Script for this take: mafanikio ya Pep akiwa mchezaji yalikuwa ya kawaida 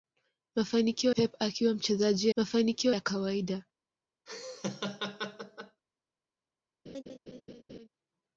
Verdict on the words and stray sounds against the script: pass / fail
fail